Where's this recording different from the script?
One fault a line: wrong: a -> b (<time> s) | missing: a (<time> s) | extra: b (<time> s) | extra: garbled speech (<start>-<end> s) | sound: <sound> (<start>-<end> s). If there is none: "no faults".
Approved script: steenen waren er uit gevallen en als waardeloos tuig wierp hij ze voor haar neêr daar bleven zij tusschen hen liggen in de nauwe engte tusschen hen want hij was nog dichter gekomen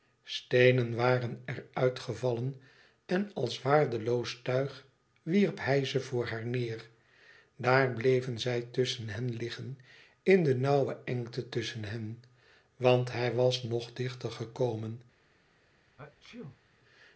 sound: sneeze (16.0-16.6 s)